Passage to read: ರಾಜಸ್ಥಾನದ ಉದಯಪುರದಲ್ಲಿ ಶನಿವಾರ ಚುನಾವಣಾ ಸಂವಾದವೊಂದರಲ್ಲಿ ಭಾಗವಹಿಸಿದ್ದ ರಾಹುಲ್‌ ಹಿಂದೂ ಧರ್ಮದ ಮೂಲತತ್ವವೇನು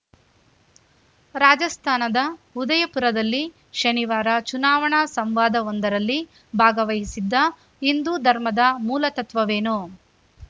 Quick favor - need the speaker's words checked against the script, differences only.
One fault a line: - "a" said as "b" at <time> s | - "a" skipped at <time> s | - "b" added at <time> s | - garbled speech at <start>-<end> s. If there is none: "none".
- "ರಾಹುಲ್" skipped at 7.3 s